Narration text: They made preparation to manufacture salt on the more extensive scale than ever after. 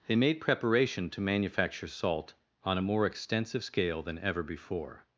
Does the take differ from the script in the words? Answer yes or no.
yes